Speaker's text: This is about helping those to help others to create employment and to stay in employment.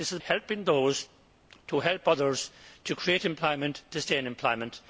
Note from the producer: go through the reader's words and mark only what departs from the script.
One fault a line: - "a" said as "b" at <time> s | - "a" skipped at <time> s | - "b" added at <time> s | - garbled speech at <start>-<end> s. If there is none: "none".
- "about" skipped at 0.2 s
- "and" skipped at 3.8 s